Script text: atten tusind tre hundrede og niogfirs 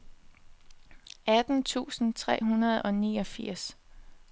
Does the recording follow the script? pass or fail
pass